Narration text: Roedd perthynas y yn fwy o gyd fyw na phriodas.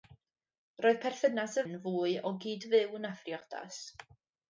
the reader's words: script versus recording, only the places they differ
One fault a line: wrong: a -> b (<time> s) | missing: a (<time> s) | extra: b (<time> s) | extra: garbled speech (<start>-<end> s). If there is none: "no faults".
no faults